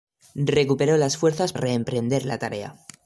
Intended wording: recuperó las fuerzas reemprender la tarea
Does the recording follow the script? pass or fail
pass